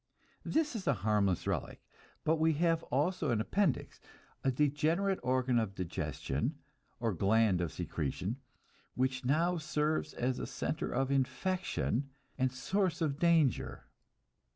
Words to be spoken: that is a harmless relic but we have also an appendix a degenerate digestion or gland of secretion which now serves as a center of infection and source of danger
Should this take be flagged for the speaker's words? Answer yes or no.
yes